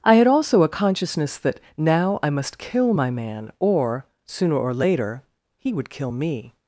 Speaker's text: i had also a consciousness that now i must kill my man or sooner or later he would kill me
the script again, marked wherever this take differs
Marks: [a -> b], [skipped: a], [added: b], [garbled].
i had also a consciousness that now i must kill my man or sooner or later he would kill me